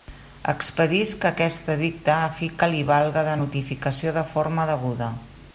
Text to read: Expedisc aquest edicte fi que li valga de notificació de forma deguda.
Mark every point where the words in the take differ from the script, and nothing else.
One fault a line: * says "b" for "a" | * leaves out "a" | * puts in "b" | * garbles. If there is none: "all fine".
* puts in "a"